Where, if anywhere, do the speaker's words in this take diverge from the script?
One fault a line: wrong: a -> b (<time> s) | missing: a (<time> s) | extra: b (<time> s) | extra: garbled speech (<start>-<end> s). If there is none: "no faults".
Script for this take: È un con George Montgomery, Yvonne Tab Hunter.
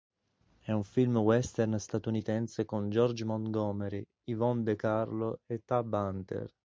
extra: film western statunitense (0.8 s)
extra: De Carlo e (4.6 s)